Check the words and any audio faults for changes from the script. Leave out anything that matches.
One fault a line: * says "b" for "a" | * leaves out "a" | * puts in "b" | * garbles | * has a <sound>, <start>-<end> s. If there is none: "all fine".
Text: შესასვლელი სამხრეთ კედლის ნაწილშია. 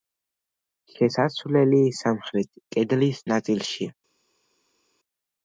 all fine